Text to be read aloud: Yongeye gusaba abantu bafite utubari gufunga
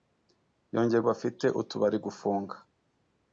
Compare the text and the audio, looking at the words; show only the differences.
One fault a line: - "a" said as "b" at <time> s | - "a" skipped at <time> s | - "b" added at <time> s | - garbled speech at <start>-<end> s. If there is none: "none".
- "gusaba abantu" skipped at 1.0 s